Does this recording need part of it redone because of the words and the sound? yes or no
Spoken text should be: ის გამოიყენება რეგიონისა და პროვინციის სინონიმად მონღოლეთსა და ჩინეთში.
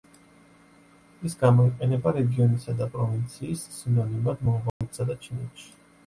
yes